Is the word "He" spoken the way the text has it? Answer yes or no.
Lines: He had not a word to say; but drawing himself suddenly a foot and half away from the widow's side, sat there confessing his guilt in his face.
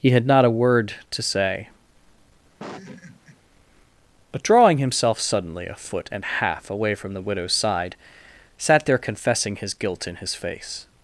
yes